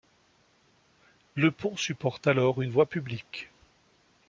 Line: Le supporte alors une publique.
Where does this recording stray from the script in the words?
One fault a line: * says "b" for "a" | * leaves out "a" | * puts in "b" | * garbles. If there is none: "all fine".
* puts in "pont"
* puts in "voie"